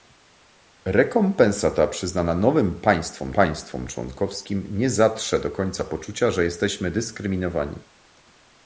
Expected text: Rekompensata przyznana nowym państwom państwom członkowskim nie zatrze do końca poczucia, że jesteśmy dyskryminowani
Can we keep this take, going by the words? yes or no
yes